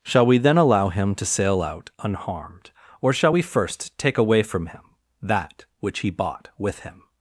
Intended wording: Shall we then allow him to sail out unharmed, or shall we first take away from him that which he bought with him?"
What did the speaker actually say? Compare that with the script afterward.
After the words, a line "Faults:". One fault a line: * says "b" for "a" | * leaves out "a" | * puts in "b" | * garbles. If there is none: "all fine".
Shall we then allow him to sail out unharmed, or shall we first take away from him that which he bought with him?"
Faults:
all fine